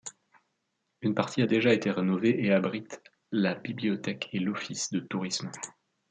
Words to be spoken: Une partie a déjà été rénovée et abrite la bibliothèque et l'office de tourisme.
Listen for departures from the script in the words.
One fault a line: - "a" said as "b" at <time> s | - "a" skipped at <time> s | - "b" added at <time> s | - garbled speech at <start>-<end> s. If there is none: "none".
none